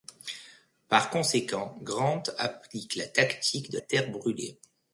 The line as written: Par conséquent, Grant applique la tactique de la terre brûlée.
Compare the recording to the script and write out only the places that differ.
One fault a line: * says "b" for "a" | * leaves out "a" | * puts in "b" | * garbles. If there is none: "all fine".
* leaves out "la"